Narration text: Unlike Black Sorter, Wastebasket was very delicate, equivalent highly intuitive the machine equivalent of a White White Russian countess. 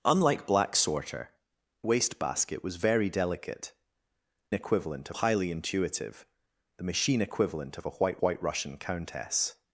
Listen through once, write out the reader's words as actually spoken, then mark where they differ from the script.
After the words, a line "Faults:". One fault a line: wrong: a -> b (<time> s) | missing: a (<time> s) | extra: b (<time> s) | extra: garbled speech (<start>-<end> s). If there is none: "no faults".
Unlike Black Sorter, Wastebasket was very delicate, equivalent highly intuitive the machine equivalent of a White White Russian countess.
Faults:
no faults